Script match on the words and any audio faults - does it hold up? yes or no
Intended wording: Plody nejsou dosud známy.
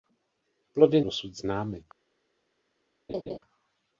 no